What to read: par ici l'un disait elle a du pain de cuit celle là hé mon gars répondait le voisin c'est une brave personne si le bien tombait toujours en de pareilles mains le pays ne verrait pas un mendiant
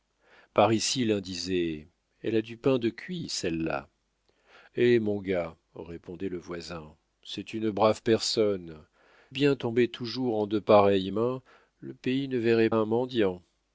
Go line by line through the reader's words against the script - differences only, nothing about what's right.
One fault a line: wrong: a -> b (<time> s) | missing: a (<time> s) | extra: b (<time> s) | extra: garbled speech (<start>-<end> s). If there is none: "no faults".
missing: si le (8.8 s)
missing: pas (12.7 s)